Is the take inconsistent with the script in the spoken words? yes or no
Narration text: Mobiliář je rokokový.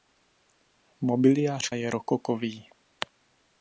no